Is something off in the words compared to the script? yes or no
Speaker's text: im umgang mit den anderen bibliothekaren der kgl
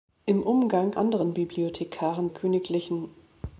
yes